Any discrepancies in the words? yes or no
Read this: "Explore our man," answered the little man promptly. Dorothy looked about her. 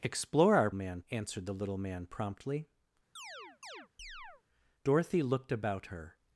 no